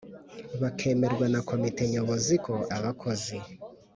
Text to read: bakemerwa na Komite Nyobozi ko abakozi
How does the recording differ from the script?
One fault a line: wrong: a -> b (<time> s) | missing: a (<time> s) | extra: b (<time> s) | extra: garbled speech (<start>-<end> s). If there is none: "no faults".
no faults